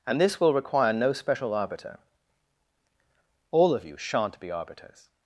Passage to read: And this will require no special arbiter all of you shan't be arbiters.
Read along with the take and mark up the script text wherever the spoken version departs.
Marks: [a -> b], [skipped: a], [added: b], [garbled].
And this will require no special arbiter all of you shan't be arbiters.